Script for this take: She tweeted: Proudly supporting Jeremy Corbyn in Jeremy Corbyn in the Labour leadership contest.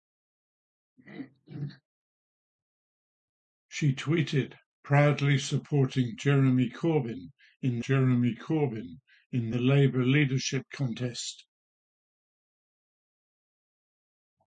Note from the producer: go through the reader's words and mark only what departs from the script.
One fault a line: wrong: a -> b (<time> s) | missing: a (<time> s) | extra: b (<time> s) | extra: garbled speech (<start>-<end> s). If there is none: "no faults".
no faults